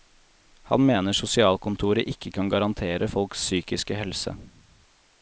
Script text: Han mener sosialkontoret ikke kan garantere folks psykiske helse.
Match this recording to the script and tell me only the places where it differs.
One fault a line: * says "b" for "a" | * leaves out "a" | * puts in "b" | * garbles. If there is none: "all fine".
all fine